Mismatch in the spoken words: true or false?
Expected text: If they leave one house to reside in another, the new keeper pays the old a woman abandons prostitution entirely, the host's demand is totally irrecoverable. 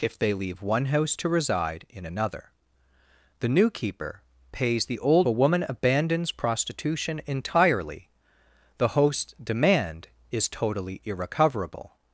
false